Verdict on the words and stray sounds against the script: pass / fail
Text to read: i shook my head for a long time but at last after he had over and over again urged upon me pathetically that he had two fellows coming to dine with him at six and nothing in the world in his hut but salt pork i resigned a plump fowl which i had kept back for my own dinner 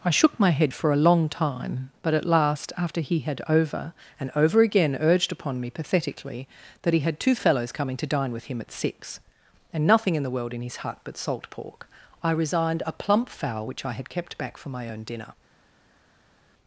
pass